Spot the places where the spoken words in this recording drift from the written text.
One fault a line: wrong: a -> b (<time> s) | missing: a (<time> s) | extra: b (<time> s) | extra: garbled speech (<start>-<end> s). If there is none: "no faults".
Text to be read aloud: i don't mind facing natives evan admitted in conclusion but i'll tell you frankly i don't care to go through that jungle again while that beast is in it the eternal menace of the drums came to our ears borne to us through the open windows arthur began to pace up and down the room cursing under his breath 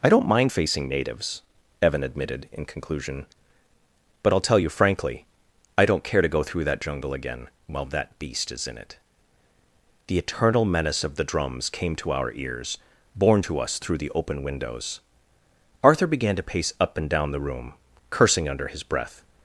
no faults